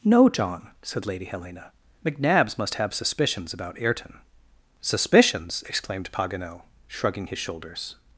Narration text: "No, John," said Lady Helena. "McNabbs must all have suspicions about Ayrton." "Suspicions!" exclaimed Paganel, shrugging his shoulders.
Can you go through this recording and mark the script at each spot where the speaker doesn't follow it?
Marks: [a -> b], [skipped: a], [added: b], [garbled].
"No, John," said Lady Helena. "McNabbs must [skipped: all] have suspicions about Ayrton." "Suspicions!" exclaimed Paganel, shrugging his shoulders.